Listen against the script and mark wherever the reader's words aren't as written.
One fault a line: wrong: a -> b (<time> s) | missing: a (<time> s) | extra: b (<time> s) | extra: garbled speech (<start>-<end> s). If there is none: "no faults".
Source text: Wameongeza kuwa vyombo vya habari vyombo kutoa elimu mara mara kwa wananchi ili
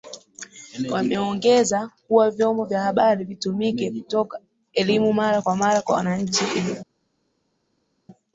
wrong: vyombo -> vitumike (3.2 s)
extra: kwa (5.4 s)